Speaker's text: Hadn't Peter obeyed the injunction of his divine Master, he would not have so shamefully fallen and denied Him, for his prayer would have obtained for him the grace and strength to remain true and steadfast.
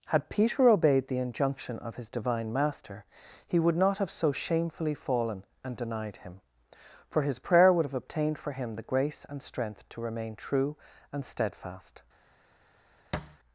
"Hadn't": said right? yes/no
no